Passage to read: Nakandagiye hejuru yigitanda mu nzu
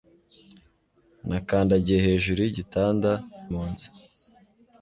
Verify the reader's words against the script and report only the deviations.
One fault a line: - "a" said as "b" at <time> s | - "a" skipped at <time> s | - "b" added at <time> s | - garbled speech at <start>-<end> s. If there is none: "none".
none